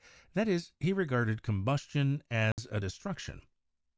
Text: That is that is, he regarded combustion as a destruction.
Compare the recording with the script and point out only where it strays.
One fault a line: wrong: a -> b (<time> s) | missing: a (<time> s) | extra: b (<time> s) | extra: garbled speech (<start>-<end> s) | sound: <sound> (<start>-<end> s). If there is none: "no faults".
missing: that is (0.7 s)
sound: dropout (2.5-2.6 s)